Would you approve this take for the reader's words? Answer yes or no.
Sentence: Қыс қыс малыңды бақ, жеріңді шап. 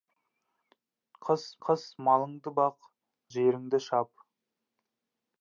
yes